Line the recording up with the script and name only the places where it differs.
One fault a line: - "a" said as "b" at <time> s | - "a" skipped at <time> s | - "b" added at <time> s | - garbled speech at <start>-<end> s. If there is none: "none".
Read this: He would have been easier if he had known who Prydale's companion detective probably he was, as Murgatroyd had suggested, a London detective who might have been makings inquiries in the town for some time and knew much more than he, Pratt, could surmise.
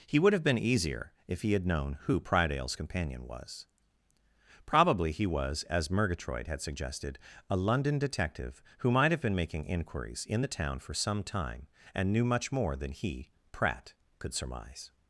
- "detective" said as "was" at 3.2 s
- "makings" said as "making" at 9.3 s